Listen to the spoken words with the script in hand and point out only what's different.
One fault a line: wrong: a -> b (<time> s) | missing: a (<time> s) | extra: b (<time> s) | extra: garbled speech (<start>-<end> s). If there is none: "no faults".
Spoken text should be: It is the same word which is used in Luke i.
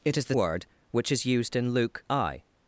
missing: same (0.3 s)